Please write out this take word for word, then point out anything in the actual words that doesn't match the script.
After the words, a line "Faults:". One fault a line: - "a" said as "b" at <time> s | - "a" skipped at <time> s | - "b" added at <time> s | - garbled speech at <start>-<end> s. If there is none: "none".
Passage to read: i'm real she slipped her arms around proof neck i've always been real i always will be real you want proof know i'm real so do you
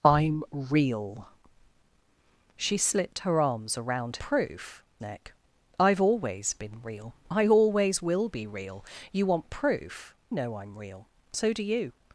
i'm real she slipped her arms around proof neck i've always been real i always will be real you want proof know i'm real so do you
Faults:
none